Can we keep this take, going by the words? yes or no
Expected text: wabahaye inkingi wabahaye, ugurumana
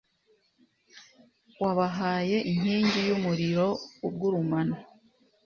no